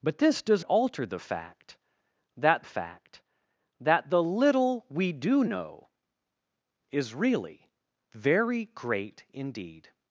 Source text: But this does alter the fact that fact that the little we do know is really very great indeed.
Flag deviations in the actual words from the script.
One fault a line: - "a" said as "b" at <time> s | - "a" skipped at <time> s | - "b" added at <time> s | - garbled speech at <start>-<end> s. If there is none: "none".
none